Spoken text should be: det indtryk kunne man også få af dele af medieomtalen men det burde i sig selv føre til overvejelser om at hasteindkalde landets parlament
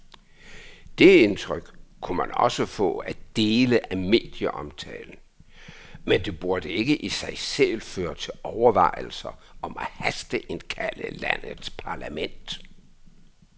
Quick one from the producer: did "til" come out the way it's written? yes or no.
yes